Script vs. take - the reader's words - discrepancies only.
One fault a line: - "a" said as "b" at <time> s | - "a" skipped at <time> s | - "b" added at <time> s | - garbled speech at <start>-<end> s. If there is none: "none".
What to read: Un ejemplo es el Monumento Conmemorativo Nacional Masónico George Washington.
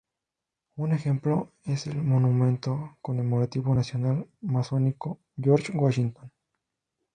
none